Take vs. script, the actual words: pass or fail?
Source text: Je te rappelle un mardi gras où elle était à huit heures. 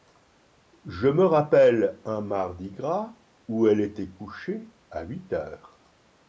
fail